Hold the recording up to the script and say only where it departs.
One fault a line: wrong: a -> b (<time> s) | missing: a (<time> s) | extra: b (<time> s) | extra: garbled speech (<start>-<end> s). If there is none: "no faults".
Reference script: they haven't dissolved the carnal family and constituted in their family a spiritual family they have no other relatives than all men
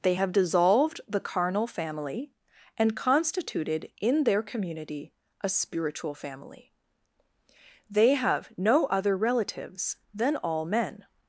wrong: haven't -> have (0.1 s)
wrong: family -> community (4.4 s)